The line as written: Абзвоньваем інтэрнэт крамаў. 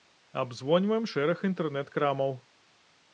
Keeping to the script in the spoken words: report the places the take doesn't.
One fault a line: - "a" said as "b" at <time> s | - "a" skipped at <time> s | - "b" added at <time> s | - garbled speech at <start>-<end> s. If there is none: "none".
- "шэраг" added at 1.1 s